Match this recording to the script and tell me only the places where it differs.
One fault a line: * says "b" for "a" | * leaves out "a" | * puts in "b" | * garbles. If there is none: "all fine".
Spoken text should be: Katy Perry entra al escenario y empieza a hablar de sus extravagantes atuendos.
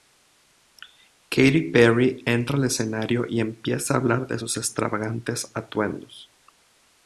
all fine